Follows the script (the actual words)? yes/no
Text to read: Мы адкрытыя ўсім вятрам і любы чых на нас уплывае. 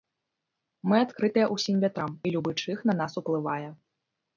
yes